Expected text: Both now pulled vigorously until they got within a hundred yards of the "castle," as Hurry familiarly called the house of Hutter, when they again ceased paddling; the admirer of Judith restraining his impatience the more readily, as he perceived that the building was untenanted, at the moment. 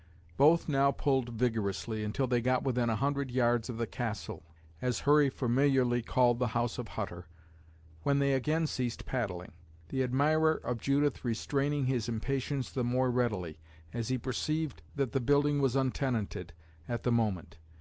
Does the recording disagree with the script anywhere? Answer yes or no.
no